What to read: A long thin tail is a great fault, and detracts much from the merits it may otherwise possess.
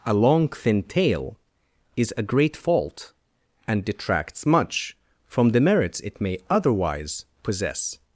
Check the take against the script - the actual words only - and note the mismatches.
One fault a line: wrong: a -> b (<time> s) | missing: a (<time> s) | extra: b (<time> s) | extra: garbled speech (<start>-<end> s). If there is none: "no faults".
no faults